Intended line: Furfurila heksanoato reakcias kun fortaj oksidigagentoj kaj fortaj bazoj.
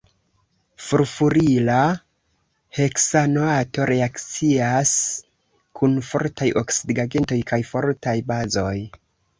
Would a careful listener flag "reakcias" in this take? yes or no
no